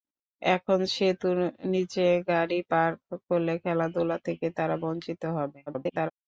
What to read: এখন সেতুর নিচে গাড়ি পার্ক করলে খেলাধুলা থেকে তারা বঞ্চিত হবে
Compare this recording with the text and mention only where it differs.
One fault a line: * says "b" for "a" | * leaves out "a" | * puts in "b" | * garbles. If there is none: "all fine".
* garbles